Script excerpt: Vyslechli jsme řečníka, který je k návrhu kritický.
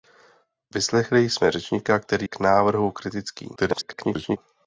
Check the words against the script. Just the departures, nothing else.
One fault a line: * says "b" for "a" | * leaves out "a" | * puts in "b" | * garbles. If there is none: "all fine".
* leaves out "je"
* garbles